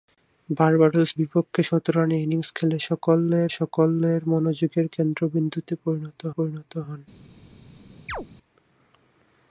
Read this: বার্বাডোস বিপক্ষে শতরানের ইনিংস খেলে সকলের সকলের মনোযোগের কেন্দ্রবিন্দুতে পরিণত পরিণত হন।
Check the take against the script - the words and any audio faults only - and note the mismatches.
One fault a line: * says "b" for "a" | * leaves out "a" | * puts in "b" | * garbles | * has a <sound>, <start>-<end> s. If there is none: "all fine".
* has a chirp, 8.1-8.3 s